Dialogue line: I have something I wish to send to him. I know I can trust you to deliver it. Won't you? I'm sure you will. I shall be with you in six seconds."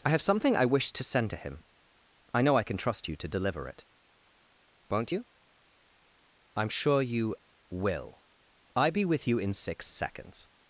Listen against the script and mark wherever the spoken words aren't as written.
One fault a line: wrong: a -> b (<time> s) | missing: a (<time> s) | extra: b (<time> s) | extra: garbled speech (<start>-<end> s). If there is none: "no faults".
missing: shall (8.9 s)